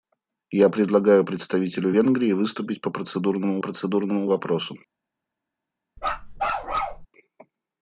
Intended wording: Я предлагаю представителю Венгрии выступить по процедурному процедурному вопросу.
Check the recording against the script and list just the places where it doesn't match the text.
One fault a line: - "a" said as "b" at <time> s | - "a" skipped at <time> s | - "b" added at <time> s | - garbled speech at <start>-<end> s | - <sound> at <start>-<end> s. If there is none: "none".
- bark at 6.0-7.1 s